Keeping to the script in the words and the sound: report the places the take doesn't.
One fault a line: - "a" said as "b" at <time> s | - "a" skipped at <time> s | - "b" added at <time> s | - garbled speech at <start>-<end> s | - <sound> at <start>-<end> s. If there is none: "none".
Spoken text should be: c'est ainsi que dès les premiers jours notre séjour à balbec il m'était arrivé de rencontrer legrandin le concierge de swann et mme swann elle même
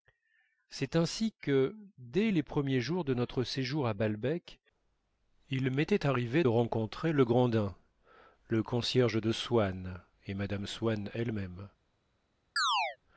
- "de" added at 3.0 s
- chirp at 12.6-13.0 s